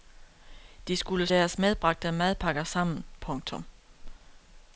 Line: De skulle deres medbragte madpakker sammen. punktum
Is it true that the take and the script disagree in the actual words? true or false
false